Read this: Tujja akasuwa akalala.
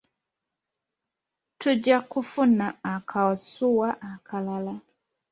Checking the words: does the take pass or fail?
fail